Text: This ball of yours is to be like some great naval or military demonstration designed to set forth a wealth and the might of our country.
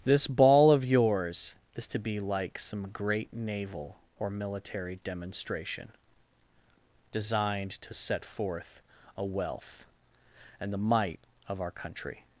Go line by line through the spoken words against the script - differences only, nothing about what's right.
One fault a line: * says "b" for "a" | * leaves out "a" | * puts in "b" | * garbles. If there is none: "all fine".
all fine